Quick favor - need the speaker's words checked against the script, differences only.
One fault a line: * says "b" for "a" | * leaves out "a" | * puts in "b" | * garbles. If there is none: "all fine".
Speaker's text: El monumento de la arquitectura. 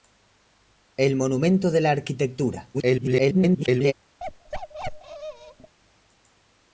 * garbles